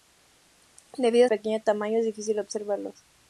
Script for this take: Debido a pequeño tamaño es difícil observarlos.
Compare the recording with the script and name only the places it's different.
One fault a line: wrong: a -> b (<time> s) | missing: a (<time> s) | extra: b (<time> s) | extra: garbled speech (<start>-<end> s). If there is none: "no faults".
no faults